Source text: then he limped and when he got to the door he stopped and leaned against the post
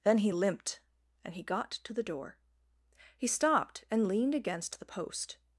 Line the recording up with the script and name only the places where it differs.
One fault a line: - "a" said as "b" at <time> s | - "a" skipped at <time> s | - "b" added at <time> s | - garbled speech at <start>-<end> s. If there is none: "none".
- "when" skipped at 1.3 s